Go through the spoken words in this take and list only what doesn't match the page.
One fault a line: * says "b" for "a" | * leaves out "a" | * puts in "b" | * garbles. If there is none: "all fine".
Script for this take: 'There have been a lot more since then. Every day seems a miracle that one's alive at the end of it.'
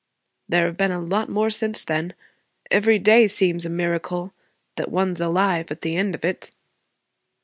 all fine